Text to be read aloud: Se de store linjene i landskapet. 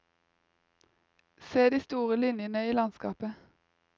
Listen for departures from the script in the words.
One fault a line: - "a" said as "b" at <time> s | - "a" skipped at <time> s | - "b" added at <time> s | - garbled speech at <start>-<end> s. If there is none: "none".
none